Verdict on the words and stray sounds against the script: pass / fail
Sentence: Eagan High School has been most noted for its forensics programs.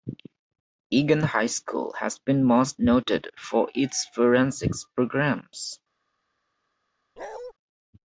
fail